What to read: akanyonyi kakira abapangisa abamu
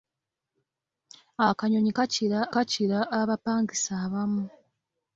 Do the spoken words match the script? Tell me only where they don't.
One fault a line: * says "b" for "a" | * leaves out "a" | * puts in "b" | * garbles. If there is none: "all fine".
* puts in "kakira"